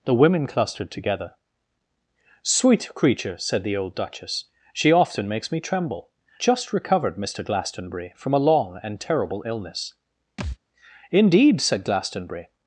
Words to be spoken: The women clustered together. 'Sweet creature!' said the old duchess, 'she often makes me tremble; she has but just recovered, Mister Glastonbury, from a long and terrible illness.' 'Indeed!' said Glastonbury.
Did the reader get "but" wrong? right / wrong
wrong